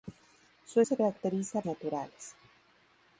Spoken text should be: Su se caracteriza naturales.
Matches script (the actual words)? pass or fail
pass